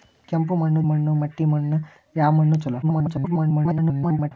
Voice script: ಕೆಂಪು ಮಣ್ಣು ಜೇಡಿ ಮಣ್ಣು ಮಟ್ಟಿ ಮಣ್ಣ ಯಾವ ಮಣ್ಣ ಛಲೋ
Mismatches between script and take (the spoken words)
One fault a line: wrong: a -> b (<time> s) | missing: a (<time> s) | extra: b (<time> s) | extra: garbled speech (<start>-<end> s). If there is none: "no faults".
missing: ಜೇಡಿ (0.8 s)
extra: garbled speech (2.8-4.3 s)